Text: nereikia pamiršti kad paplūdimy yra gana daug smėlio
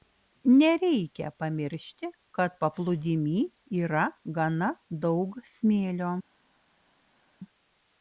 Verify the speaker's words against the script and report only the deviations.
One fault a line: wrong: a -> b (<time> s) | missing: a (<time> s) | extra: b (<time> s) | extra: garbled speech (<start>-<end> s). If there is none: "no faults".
no faults